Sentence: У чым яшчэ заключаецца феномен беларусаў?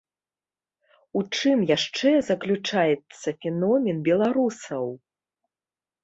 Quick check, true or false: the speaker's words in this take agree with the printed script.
true